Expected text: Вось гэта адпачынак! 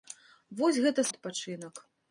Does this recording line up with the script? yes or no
yes